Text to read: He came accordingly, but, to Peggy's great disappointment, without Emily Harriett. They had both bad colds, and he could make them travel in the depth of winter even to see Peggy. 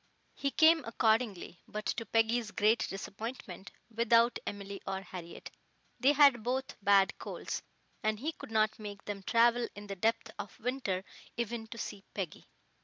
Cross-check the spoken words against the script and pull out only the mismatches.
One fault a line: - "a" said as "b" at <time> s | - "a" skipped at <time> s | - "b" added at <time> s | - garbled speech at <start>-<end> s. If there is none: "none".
- "or" added at 4.9 s
- "not" added at 8.5 s